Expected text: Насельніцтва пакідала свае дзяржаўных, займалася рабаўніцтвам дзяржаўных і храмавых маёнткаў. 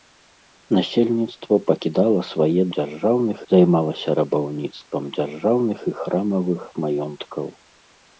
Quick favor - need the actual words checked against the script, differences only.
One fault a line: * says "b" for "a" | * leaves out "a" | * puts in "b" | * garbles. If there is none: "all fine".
all fine